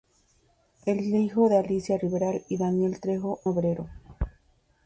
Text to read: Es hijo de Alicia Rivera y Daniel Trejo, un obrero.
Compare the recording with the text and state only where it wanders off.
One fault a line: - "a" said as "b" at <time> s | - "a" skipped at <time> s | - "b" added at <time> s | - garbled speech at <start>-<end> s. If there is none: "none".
- "un" skipped at 3.4 s